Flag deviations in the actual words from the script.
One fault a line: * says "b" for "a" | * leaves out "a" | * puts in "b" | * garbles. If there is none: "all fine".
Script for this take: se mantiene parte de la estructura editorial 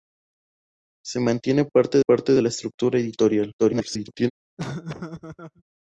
* puts in "parte"
* garbles